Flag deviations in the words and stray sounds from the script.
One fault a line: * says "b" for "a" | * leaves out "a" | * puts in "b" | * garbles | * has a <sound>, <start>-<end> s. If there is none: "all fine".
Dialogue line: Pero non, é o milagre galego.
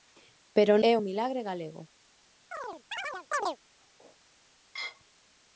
* leaves out "non"
* has a chirp, 2.5-3.6 s